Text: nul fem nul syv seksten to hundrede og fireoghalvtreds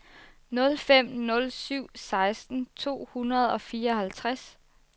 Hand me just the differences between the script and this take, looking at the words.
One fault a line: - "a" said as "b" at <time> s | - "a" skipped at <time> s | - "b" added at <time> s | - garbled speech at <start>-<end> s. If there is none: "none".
none